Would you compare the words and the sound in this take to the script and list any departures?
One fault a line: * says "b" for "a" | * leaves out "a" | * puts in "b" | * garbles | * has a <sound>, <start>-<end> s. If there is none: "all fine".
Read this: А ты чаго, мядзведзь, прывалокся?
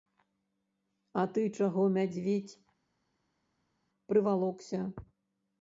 all fine